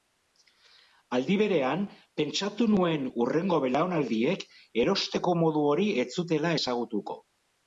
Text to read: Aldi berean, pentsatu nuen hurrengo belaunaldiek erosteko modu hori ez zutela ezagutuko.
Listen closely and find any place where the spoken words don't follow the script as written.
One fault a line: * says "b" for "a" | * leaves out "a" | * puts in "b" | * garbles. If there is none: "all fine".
all fine